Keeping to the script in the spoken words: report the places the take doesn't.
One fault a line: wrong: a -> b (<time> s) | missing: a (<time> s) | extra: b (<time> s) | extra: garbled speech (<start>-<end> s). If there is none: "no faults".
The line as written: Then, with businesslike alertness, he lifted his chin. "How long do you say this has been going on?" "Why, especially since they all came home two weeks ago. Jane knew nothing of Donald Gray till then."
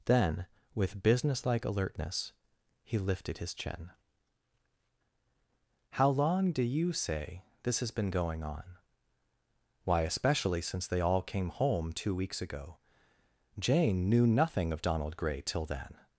no faults